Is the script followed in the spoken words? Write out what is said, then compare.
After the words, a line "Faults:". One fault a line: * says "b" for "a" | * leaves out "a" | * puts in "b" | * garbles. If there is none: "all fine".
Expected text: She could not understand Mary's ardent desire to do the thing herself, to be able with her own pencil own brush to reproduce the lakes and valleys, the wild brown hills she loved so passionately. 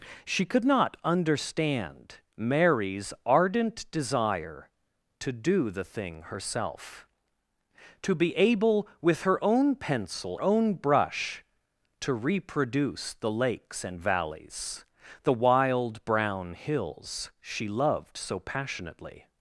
She could not understand Mary's ardent desire to do the thing herself, to be able with her own pencil own brush to reproduce the lakes and valleys, the wild brown hills she loved so passionately.
Faults:
all fine